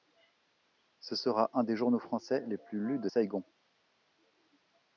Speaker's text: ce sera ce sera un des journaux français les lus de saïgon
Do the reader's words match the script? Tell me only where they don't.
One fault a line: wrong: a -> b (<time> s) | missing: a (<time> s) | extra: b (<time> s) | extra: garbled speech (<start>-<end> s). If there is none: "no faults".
missing: ce sera (1.5 s)
extra: plus (2.6 s)